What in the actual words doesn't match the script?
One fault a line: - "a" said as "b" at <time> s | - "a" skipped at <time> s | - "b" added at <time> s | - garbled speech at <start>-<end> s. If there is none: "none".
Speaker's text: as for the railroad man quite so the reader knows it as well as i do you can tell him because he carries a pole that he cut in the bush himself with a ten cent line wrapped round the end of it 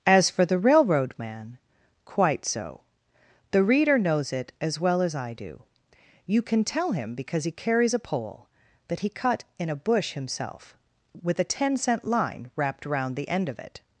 - "the" said as "a" at 9.7 s